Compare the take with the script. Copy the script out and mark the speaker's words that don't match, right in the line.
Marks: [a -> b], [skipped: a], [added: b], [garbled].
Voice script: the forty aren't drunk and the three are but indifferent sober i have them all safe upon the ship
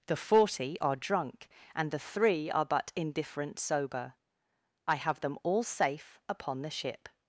the forty [aren't -> are] drunk and the three are but indifferent sober i have them all safe upon the ship